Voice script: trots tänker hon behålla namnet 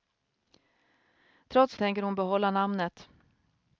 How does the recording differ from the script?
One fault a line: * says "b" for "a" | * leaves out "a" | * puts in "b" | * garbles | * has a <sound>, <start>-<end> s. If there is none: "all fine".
all fine